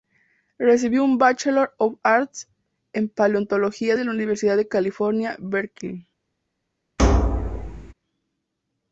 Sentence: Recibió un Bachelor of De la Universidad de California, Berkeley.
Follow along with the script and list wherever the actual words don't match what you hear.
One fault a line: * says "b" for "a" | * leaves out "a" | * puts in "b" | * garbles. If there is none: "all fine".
* puts in "Arts en paleontología"